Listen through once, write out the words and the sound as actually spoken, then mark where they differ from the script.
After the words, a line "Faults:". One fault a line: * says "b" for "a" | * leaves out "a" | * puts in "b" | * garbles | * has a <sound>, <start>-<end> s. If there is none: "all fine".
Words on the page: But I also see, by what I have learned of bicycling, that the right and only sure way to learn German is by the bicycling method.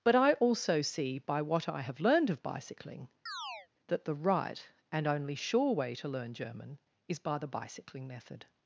But I also see, by what I have learned of bicycling, that the right and only sure way to learn German is by the bicycling method.
Faults:
* has a chirp, 3.3-3.7 s